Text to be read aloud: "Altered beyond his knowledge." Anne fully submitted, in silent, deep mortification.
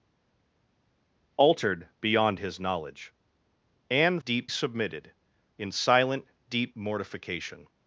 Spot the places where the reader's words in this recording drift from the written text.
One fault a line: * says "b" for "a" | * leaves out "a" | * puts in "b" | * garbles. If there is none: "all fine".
* says "deep" for "fully"